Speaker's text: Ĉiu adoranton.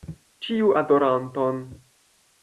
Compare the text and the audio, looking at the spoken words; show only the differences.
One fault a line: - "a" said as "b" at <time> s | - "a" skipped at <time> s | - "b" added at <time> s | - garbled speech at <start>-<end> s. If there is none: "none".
none